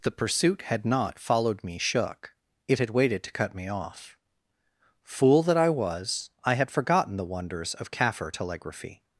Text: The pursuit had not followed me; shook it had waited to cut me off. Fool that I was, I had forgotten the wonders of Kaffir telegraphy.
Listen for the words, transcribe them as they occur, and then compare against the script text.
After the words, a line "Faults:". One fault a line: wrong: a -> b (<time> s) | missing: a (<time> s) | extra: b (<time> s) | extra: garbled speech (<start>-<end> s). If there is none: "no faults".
The pursuit had not followed me; shook it had waited to cut me off. Fool that I was, I had forgotten the wonders of Kaffir telegraphy.
Faults:
no faults